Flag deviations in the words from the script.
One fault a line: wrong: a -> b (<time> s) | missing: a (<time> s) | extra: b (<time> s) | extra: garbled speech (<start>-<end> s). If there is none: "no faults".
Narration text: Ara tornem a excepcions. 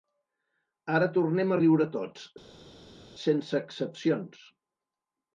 extra: riure tots sense (1.6 s)